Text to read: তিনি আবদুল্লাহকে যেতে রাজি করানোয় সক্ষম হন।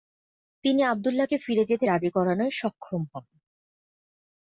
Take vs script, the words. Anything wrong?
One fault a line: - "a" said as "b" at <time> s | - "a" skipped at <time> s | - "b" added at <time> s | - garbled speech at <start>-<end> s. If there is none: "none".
- "ফিরে" added at 1.4 s